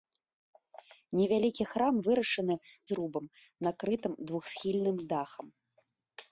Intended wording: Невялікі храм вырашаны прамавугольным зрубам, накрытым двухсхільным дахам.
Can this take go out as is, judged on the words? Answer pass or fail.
fail